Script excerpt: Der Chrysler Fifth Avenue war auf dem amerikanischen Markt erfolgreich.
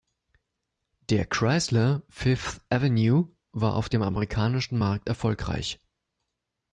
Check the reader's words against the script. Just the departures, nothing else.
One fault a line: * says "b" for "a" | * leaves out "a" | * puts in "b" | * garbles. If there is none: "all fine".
all fine